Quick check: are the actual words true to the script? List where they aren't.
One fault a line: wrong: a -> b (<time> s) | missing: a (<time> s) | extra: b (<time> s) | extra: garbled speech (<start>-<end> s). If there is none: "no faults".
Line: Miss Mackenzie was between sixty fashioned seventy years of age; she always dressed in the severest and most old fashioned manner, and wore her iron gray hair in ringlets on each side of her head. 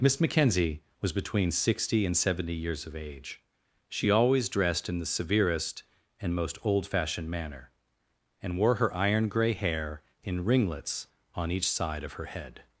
wrong: fashioned -> and (2.1 s)